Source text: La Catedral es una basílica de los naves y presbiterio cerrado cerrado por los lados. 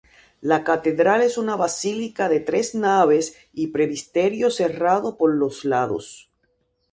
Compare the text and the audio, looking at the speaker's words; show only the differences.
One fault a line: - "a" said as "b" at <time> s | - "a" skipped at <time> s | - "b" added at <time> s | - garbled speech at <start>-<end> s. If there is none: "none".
- "los" said as "tres" at 2.4 s
- "cerrado" skipped at 5.2 s